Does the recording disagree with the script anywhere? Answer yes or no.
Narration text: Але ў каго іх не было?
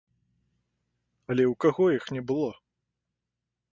no